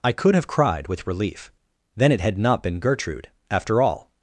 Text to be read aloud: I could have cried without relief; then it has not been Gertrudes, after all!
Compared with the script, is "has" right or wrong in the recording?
wrong